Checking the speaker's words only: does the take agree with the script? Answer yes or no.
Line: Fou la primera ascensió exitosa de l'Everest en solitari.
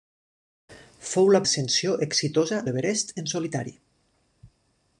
no